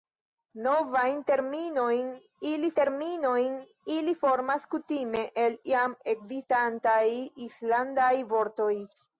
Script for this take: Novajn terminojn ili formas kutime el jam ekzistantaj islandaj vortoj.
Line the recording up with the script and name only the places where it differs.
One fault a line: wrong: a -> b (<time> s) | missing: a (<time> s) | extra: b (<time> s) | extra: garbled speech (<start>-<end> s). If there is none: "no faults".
extra: terminojn ili (2.8 s)